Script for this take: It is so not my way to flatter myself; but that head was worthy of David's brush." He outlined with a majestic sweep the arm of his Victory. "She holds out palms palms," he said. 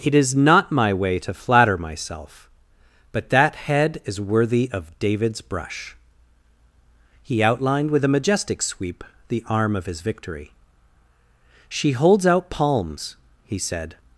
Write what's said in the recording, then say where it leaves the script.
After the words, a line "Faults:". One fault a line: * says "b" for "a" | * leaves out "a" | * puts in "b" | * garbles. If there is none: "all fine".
It is not my way to flatter myself; but that head is worthy of David's brush." He outlined with a majestic sweep the arm of his Victory. "She holds out palms," he said.
Faults:
* leaves out "so"
* says "is" for "was"
* leaves out "palms"